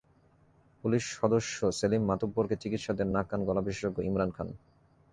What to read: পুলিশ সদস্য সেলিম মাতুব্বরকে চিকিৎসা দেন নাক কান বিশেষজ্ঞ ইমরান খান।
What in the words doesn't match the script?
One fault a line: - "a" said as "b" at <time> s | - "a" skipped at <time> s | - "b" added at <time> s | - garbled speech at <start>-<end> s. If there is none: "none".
- "গলা" added at 3.5 s